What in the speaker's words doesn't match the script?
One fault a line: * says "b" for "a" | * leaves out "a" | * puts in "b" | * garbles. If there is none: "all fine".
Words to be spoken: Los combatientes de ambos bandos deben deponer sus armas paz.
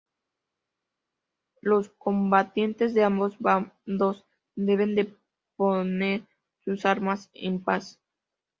* puts in "en"